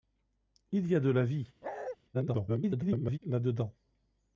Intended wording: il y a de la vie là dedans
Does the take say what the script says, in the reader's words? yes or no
no